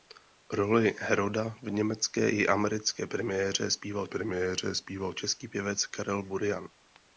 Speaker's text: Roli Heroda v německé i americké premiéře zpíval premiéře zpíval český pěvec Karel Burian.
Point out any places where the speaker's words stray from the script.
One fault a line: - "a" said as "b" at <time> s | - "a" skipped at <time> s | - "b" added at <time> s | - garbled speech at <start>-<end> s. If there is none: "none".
none